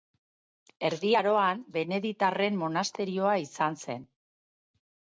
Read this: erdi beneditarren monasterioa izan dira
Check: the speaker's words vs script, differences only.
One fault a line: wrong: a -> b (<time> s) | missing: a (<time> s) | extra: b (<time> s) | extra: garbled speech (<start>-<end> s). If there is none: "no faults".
extra: aroan (1.2 s)
wrong: dira -> zen (3.9 s)